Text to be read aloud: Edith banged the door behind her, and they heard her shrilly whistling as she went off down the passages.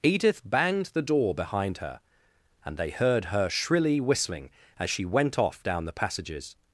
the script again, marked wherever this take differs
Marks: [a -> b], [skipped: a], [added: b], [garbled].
Edith banged the door behind her, and they heard her shrilly whistling as she went off down the passages.